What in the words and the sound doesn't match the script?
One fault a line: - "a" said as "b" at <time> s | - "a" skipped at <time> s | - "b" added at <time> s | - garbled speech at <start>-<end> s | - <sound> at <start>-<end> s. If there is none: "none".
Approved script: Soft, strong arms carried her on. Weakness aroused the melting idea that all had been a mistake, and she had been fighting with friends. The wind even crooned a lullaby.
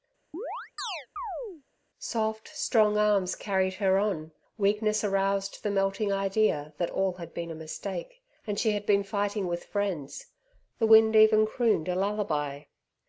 - chirp at 0.3-1.6 s